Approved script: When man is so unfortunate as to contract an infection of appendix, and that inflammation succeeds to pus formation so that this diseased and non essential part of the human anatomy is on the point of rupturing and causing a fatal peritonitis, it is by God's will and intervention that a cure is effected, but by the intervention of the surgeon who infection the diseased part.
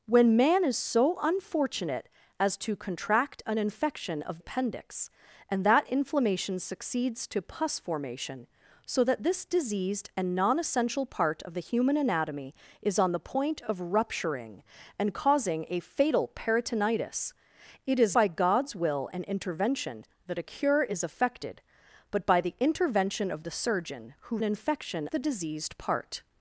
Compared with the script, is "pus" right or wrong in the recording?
right